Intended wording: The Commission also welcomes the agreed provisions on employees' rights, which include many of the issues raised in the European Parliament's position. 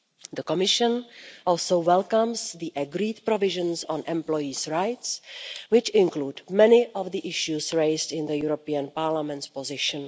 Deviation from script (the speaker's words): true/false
false